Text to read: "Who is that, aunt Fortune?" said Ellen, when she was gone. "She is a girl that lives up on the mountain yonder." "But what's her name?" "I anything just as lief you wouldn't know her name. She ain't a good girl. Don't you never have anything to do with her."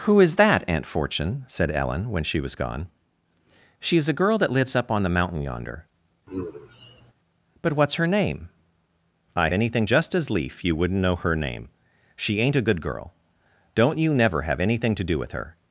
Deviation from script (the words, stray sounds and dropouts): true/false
true